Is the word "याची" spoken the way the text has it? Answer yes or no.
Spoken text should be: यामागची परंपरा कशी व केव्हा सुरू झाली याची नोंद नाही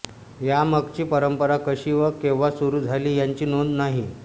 yes